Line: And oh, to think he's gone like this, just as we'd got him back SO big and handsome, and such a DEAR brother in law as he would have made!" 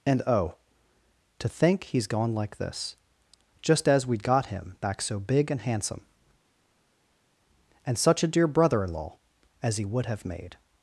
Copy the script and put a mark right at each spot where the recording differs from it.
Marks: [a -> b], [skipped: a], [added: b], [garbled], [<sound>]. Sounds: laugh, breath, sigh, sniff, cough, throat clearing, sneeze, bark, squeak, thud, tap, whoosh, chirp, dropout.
And oh, to think he's gone like this, just as we'd got him back SO big and handsome, and such a DEAR brother in law as he would have made!"